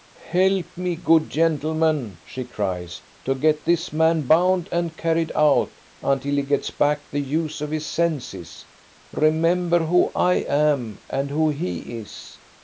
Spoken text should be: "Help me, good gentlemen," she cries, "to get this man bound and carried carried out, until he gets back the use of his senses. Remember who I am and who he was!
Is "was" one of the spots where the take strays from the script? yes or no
yes